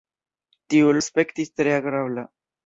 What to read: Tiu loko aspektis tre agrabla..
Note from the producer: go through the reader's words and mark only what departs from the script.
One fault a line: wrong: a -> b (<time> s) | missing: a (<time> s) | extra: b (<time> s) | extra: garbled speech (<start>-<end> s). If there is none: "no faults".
missing: loko (0.9 s)